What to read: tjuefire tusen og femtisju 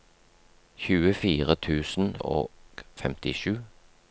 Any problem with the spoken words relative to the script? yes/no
no